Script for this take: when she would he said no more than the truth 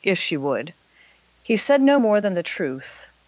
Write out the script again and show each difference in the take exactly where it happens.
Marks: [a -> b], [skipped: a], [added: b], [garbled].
[when -> if] she would he said no more than the truth